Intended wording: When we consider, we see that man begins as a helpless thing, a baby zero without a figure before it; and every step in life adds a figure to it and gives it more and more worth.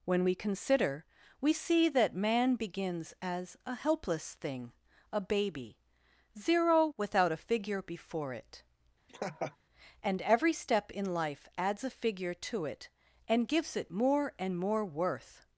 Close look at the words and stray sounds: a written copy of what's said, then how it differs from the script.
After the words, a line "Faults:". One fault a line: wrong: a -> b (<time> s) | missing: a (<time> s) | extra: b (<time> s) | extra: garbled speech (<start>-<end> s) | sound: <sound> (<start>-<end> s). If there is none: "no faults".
When we consider, we see that man begins as a helpless thing, a baby zero without a figure before it; and every step in life adds a figure to it and gives it more and more worth.
Faults:
sound: laugh (9.1-9.6 s)